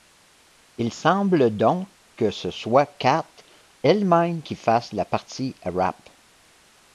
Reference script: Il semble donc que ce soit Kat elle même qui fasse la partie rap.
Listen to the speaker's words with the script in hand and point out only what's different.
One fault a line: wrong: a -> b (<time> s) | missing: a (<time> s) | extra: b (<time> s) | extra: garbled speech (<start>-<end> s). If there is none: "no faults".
no faults